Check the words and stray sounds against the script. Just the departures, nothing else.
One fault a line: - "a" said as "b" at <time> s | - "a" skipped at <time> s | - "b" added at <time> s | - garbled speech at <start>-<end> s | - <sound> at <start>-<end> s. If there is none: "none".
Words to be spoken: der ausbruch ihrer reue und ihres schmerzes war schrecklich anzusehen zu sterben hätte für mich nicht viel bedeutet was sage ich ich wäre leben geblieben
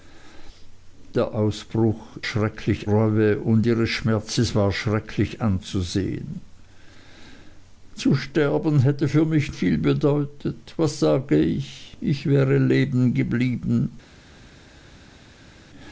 - "ihrer" said as "schrecklich" at 2.2 s
- "nicht" skipped at 9.5 s